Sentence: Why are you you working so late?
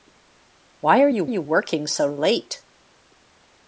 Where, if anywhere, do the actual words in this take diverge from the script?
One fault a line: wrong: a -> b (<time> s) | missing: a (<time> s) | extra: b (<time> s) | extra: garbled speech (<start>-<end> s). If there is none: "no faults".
no faults